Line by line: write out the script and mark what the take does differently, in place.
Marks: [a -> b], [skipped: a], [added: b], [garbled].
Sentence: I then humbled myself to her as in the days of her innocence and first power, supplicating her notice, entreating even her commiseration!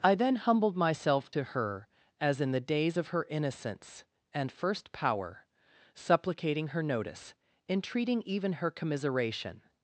I then humbled myself to her as in the days of her innocence and first power, supplicating her notice, entreating even her commiseration!